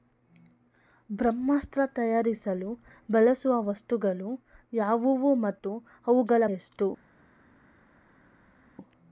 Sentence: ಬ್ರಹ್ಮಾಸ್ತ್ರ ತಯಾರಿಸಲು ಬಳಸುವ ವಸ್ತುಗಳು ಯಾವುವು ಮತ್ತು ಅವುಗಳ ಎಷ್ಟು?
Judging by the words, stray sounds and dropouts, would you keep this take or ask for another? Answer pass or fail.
pass